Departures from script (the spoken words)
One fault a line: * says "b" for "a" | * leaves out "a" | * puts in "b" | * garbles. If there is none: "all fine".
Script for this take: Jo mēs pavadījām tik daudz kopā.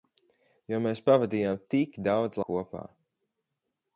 all fine